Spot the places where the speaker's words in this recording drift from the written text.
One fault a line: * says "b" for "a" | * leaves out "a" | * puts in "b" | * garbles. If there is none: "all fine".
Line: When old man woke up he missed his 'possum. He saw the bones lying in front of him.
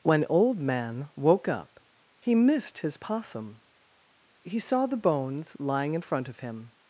all fine